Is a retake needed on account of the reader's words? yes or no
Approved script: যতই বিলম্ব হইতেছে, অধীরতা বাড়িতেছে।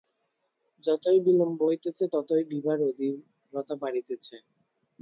yes